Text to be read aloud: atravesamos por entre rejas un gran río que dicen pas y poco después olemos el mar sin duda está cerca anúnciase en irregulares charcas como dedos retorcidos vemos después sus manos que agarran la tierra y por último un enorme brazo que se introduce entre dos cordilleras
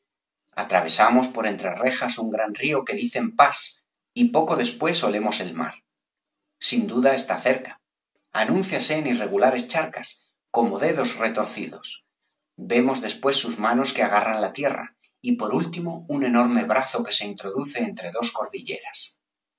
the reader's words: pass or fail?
pass